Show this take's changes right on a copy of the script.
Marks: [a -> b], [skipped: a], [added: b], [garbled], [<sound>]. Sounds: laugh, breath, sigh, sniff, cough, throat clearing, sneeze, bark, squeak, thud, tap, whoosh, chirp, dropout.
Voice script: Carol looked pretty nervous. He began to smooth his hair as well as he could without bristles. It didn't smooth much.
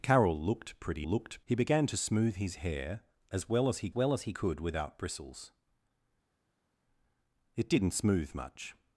Carol looked pretty [nervous. -> looked] He began to smooth his hair as well as he [added: well as he] could without bristles. It didn't smooth much.